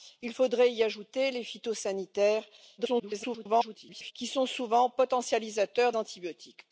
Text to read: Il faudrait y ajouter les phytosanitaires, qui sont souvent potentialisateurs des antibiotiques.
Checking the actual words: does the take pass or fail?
fail